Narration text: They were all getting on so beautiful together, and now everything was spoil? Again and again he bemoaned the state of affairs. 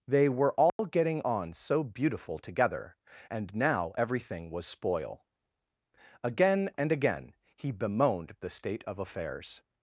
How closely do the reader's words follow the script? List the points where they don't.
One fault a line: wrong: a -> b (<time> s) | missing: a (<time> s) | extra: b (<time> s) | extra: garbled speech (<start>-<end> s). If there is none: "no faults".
no faults